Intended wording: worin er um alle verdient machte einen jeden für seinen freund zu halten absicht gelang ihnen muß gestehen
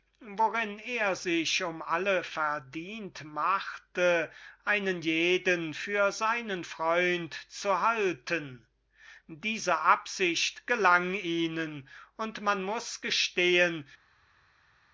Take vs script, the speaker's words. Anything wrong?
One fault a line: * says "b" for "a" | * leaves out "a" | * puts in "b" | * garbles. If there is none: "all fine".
* puts in "sich"
* puts in "diese"
* puts in "und man"